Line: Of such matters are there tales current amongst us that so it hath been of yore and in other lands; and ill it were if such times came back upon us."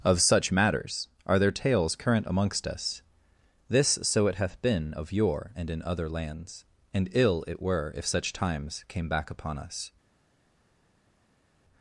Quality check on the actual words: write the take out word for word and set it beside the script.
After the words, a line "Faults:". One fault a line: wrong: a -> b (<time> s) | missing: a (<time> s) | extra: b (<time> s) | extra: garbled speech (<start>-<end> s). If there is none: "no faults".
Of such matters are there tales current amongst us this so it hath been of yore and in other lands; and ill it were if such times came back upon us."
Faults:
wrong: that -> this (3.7 s)